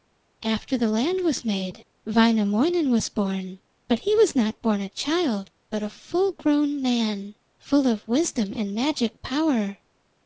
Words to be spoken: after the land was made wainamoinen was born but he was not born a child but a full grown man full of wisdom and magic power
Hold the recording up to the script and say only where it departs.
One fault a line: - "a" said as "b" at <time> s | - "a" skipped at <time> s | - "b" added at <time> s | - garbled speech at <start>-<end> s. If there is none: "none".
none